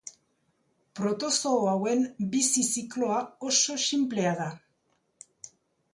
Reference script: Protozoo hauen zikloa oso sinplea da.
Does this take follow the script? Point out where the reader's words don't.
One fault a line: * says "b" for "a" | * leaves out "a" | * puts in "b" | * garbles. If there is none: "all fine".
* puts in "bizi"